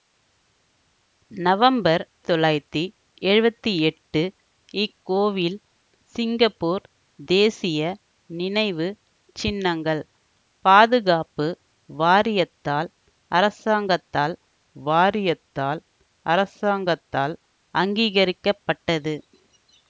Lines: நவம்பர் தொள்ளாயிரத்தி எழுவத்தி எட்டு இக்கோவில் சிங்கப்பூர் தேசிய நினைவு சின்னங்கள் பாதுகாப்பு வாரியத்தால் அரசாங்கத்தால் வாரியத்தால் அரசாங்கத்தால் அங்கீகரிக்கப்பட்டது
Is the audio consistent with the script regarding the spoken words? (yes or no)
yes